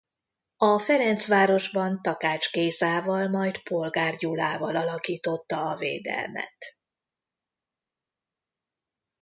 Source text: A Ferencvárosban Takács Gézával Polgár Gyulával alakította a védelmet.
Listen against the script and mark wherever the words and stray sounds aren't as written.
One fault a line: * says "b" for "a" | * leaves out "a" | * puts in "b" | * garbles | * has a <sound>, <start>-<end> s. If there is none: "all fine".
* puts in "majd"